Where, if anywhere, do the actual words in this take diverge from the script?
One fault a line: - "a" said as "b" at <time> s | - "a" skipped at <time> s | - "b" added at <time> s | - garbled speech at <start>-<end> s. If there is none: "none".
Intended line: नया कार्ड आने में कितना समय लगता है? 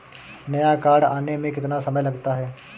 none